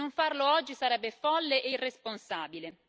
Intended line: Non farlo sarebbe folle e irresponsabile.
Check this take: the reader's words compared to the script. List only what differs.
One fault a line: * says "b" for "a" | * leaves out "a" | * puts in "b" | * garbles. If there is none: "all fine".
* puts in "oggi"